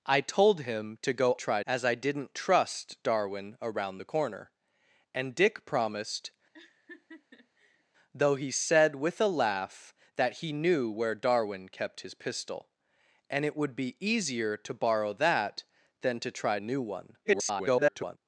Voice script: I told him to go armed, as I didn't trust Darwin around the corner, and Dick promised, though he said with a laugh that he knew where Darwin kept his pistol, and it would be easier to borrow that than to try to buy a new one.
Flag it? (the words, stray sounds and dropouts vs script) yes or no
yes